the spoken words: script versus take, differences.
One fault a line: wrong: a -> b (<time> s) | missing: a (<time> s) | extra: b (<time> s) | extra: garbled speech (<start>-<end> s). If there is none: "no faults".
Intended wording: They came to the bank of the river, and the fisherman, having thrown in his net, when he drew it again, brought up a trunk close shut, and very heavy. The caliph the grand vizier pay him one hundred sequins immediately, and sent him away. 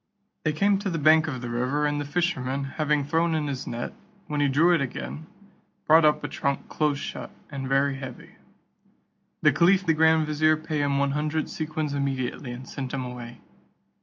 no faults